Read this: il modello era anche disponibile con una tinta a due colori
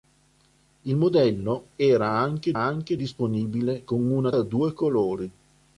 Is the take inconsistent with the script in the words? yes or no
yes